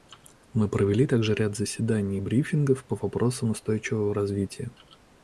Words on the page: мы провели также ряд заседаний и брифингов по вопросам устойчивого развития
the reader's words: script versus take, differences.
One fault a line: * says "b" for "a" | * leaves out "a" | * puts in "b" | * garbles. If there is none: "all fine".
all fine